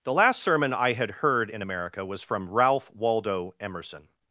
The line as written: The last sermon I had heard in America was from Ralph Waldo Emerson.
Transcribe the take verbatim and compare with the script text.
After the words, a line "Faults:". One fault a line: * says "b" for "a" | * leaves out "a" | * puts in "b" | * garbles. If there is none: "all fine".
The last sermon I had heard in America was from Ralph Waldo Emerson.
Faults:
all fine